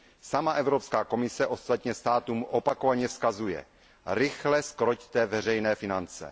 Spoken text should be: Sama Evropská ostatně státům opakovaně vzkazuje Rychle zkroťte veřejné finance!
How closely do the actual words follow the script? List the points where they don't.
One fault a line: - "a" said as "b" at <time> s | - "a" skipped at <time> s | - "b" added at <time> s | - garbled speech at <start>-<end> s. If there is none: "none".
- "komise" added at 1.0 s